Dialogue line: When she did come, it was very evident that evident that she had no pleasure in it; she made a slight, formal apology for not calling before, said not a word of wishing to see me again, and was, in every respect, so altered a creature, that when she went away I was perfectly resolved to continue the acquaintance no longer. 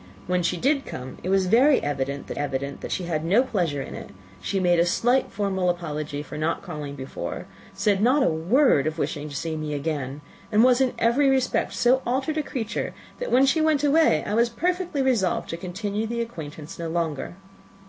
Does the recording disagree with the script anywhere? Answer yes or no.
no